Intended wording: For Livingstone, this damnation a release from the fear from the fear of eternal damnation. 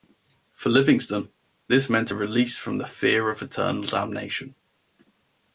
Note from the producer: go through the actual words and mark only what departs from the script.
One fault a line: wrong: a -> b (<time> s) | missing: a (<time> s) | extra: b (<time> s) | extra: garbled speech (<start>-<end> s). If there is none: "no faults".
wrong: damnation -> meant (1.9 s)
missing: from the fear (3.3 s)